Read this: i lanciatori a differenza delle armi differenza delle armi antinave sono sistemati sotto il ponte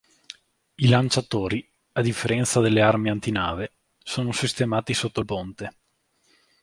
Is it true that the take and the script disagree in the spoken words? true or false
true